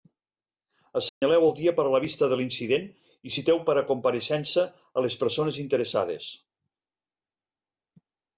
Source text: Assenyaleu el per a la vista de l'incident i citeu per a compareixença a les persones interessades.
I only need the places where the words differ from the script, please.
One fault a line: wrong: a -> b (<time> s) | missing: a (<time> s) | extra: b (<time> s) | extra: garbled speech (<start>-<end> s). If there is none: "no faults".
extra: dia (1.6 s)